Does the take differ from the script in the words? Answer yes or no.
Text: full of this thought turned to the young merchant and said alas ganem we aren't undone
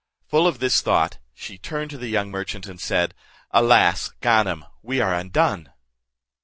yes